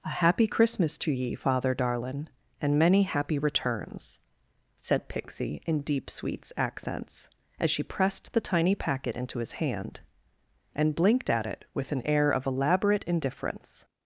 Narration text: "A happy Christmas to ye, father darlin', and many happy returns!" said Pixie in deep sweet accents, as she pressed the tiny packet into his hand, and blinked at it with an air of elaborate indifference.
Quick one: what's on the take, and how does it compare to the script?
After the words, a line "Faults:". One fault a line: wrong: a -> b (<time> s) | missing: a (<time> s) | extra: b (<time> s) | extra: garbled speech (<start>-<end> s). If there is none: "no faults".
"A happy Christmas to ye, father darlin', and many happy returns!" said Pixie in deep sweets accents, as she pressed the tiny packet into his hand, and blinked at it with an air of elaborate indifference.
Faults:
wrong: sweet -> sweets (6.1 s)